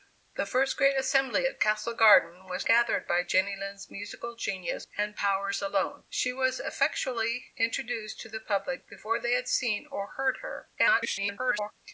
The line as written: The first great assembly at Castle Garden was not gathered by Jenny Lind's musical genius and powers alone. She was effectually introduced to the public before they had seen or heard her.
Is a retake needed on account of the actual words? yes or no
yes